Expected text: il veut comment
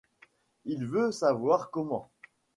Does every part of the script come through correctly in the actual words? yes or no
no